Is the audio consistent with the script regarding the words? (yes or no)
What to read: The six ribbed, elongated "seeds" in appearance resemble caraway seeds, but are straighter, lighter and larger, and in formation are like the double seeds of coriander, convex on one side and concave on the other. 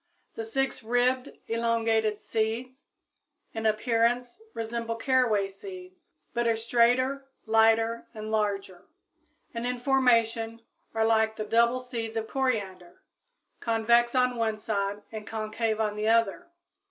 yes